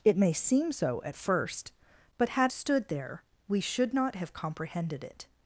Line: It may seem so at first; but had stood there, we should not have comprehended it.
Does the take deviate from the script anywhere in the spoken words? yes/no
no